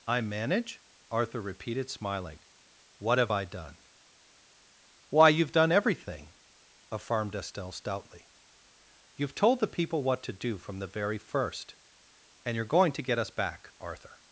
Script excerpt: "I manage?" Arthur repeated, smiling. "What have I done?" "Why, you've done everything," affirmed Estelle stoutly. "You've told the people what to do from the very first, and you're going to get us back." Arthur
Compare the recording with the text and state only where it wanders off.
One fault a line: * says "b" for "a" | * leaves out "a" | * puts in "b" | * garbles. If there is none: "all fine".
all fine